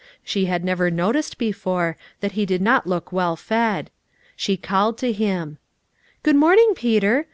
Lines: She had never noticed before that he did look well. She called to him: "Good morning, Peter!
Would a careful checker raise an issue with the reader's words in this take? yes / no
yes